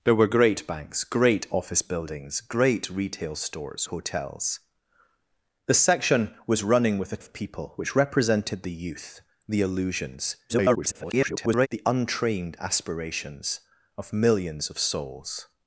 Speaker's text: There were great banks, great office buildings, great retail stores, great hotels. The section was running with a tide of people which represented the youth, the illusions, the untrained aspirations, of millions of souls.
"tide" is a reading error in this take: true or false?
true